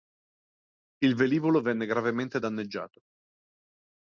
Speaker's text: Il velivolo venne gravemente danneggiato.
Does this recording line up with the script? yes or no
yes